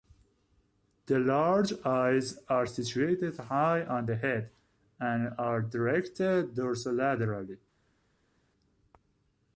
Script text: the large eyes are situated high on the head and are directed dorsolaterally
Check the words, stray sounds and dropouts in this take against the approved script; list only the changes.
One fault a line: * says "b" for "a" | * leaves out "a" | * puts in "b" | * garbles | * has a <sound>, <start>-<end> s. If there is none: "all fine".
all fine